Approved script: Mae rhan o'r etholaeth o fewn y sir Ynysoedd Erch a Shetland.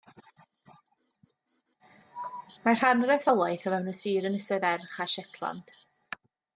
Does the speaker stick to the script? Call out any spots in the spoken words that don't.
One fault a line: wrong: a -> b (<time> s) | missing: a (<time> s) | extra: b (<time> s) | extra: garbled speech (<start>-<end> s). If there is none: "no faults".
no faults